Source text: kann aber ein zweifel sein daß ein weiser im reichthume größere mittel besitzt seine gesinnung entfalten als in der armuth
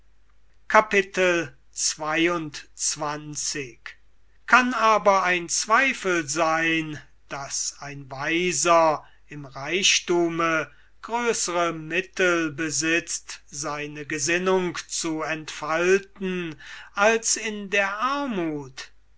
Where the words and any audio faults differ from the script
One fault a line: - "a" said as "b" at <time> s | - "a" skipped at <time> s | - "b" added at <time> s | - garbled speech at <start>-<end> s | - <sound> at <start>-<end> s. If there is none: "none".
- "zu" added at 14.9 s